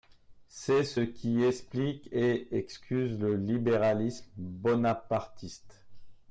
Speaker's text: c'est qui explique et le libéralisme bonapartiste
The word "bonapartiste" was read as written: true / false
true